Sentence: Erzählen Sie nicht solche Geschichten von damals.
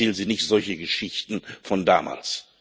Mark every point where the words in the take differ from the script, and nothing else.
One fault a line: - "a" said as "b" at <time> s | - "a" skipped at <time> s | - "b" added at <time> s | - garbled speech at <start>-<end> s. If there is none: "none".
none